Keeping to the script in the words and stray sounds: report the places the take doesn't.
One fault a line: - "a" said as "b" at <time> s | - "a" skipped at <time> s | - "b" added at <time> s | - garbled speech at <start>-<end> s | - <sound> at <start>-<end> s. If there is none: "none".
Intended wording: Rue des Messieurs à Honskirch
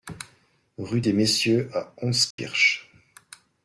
- dropout at 2.3-2.4 s